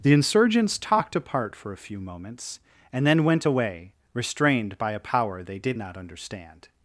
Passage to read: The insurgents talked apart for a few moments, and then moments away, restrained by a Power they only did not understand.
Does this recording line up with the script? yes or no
no